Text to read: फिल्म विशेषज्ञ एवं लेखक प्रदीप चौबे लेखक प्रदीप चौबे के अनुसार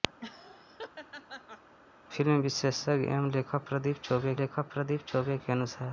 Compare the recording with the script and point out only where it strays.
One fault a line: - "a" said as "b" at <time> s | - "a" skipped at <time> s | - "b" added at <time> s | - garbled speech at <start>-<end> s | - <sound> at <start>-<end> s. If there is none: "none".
- laugh at 0.2-1.7 s